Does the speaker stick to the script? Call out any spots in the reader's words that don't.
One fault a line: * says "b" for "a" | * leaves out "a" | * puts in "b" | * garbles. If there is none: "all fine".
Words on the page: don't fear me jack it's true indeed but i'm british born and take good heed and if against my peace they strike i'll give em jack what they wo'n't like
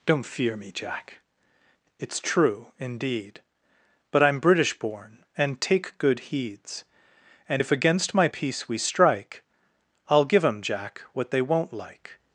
* says "heeds" for "heed"
* says "we" for "they"